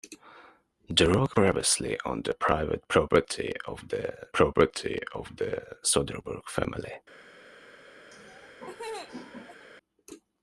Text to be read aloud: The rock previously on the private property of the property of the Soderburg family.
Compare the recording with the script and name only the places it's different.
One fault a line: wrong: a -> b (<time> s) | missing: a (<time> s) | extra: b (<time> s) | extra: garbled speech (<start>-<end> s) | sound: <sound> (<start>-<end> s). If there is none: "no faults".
sound: laugh (8.1-9.7 s)